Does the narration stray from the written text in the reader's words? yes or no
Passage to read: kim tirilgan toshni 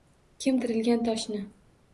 no